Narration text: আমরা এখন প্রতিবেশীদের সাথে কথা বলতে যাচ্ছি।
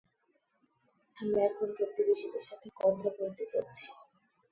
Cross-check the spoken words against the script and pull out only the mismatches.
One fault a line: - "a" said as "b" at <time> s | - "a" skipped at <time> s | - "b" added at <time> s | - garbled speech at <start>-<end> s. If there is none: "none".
none